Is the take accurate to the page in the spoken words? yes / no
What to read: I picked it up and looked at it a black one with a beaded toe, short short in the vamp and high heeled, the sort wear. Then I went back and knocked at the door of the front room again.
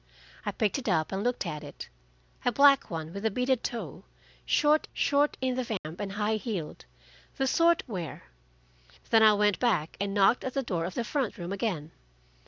yes